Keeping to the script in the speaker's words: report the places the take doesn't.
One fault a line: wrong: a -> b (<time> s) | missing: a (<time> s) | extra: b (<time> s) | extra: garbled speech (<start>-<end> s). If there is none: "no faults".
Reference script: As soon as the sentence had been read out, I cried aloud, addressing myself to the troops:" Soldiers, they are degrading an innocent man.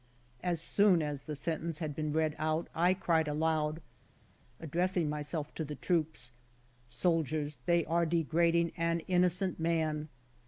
no faults